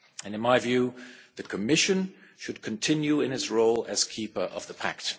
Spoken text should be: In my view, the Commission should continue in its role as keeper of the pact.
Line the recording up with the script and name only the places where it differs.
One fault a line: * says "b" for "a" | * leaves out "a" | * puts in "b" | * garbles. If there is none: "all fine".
all fine